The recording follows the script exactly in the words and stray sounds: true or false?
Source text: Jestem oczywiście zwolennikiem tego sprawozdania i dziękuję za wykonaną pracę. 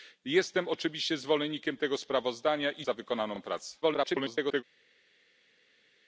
false